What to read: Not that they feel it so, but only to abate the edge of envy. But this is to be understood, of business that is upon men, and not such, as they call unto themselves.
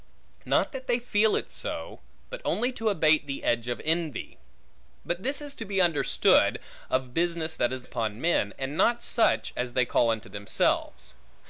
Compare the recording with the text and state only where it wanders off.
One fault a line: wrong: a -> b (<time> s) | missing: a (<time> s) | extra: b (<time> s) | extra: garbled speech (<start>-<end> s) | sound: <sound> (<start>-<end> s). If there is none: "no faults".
no faults